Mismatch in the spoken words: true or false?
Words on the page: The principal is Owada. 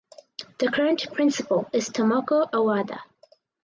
true